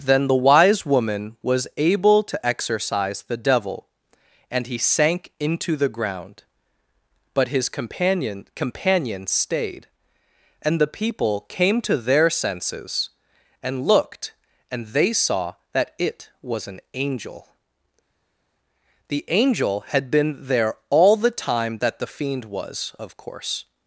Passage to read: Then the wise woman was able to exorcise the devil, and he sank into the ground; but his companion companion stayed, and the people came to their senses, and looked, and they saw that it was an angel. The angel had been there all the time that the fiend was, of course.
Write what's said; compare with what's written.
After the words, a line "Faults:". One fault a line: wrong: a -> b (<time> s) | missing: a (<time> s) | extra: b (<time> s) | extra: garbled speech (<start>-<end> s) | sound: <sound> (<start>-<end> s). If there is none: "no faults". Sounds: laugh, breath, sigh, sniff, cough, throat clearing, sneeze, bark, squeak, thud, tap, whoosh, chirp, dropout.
Then the wise woman was able to exorcise the devil, and he sank into the ground; but his companion companion stayed, and the people came to their senses, and looked, and they saw that it was an angel. The angel had been there all the time that the fiend was, of course.
Faults:
no faults